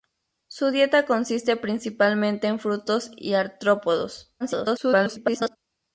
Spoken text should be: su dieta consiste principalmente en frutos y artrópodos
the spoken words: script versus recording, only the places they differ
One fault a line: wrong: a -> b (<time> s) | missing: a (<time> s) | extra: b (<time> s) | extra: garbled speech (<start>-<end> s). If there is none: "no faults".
extra: garbled speech (4.4-5.6 s)